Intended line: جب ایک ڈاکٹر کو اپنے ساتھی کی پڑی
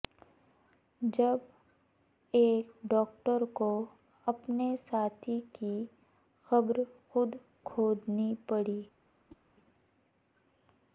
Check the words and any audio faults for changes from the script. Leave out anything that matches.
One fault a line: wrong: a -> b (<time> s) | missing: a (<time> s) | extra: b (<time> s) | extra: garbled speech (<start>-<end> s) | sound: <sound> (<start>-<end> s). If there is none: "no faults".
extra: قبر خود کھودنی (6.5 s)
sound: whoosh (9.3-9.4 s)